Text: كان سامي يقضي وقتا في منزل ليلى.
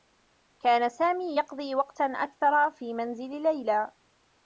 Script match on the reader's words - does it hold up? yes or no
no